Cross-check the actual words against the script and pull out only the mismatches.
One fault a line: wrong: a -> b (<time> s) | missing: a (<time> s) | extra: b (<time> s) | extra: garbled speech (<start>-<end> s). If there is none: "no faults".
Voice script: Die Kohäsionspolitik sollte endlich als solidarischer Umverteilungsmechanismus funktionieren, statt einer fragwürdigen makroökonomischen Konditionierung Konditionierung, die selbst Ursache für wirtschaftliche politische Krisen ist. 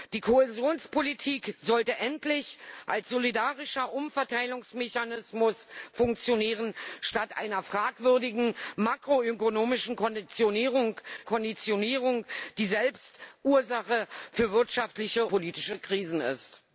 no faults